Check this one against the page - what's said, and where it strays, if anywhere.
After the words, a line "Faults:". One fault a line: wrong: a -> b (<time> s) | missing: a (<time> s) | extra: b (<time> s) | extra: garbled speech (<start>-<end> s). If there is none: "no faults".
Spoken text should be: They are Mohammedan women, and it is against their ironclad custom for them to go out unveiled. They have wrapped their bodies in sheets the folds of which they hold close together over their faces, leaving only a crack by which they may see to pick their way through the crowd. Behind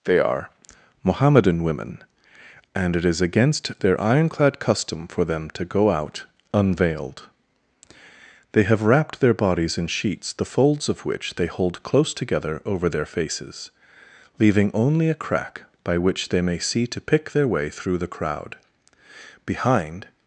They are Mohammedan women, and it is against their ironclad custom for them to go out unveiled. They have wrapped their bodies in sheets the folds of which they hold close together over their faces, leaving only a crack by which they may see to pick their way through the crowd. Behind
Faults:
no faults